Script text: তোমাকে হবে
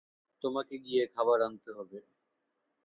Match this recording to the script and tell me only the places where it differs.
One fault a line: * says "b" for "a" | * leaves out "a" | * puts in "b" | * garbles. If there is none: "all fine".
* puts in "গিয়ে খাবার আনতে"